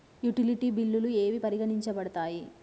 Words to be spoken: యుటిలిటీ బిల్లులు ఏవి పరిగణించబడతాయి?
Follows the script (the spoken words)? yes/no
yes